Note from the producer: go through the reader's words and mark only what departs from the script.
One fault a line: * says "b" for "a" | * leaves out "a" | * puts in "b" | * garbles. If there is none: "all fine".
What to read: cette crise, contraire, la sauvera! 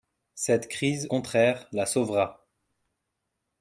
all fine